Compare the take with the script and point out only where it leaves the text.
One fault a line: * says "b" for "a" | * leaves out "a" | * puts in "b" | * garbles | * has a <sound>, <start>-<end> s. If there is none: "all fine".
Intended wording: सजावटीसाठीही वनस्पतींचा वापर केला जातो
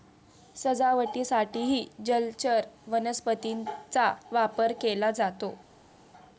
* puts in "जलचर"